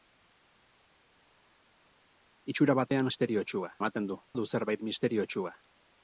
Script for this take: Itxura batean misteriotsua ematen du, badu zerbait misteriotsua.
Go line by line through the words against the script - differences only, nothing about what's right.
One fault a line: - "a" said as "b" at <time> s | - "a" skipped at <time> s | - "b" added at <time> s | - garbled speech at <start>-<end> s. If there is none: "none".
none